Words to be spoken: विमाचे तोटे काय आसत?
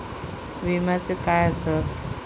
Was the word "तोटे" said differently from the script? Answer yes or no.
yes